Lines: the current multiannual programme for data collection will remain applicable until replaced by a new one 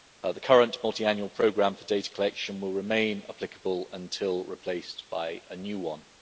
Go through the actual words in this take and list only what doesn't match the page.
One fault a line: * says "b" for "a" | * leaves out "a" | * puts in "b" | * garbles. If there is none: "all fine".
all fine